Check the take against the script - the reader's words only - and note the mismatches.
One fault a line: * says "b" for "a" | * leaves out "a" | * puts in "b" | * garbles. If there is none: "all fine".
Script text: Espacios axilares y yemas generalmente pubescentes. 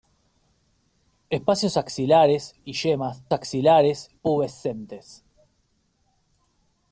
* says "axilares" for "generalmente"